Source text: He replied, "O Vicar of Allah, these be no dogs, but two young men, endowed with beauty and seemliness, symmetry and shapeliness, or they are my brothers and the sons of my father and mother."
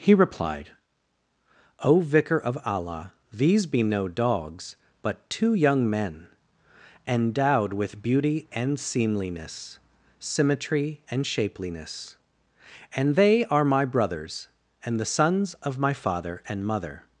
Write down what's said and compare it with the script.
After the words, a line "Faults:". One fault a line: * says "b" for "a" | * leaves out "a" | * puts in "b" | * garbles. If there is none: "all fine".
He replied, "O Vicar of Allah, these be no dogs, but two young men, endowed with beauty and seemliness, symmetry and shapeliness, and they are my brothers and the sons of my father and mother."
Faults:
* says "and" for "or"